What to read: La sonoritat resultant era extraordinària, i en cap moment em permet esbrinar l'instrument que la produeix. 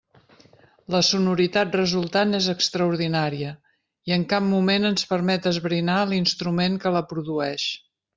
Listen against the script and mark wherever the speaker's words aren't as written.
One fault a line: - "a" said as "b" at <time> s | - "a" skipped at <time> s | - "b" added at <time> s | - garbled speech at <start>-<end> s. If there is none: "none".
- "era" said as "és" at 2.4 s
- "em" said as "ens" at 4.9 s